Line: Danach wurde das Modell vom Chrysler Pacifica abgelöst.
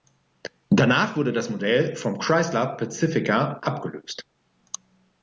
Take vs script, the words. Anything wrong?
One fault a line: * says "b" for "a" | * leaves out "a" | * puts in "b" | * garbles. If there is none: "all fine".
all fine